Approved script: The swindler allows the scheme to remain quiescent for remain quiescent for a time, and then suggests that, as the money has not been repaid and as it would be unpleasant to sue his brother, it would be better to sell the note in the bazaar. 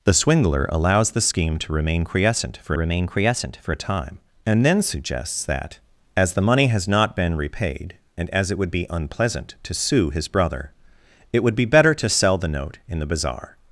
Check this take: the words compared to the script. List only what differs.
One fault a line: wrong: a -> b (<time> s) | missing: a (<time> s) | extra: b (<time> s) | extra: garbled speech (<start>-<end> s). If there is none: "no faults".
no faults